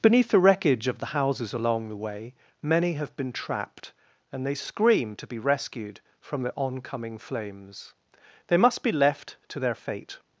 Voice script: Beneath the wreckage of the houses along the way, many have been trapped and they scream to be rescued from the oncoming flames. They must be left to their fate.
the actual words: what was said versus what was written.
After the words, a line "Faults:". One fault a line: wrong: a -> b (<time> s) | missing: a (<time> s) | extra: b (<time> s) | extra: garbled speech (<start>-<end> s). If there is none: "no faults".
Beneath the wreckage of the houses along the way, many have been trapped and they scream to be rescued from the oncoming flames. They must be left to their fate.
Faults:
no faults